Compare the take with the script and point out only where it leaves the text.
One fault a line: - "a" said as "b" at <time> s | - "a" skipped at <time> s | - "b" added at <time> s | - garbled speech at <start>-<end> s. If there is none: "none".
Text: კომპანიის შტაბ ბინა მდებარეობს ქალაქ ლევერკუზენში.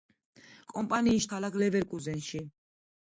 - "შტაბ ბინა მდებარეობს" skipped at 1.3 s